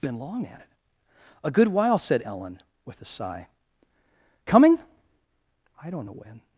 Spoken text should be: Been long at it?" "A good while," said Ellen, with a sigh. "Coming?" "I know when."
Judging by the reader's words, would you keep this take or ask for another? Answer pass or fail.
fail